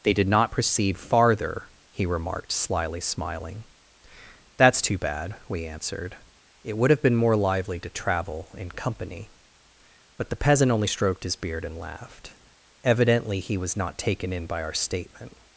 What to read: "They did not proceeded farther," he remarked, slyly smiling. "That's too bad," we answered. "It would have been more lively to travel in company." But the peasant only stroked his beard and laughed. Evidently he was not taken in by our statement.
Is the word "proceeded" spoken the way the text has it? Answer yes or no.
no